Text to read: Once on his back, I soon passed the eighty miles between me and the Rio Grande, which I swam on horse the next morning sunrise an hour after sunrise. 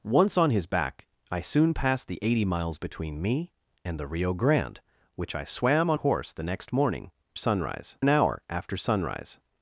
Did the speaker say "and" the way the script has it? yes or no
yes